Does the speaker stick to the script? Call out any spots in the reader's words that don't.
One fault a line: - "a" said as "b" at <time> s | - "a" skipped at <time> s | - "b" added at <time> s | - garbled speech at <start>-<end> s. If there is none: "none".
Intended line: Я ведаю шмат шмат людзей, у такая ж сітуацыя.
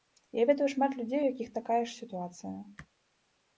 - "шмат" skipped at 0.9 s
- "якіх" added at 1.3 s